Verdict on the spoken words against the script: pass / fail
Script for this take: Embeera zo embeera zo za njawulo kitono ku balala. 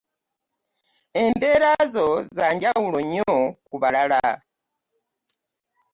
fail